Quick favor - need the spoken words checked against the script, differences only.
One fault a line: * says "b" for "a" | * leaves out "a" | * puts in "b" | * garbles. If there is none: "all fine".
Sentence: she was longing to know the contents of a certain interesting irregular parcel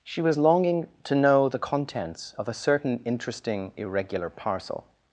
all fine